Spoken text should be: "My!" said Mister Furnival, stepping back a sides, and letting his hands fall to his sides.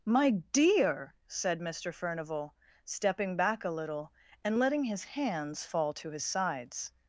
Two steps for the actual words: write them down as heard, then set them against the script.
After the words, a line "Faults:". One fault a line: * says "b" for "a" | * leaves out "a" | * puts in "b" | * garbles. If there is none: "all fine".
"My dear!" said Mister Furnival, stepping back a little, and letting his hands fall to his sides.
Faults:
* puts in "dear"
* says "little" for "sides"